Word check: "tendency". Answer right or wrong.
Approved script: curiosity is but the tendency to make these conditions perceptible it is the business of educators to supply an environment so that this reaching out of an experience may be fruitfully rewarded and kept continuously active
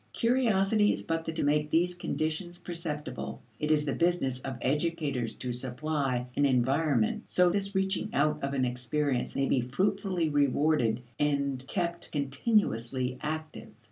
wrong